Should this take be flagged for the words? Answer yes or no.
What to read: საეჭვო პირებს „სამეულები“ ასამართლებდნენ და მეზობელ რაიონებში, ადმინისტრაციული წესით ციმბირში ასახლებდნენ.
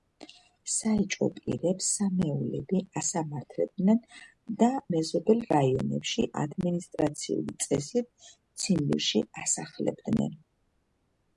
no